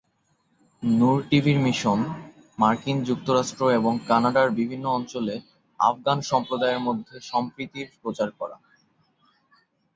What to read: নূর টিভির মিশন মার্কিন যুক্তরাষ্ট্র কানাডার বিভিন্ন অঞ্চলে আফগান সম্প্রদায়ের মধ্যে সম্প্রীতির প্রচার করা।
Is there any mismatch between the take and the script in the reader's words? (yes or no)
yes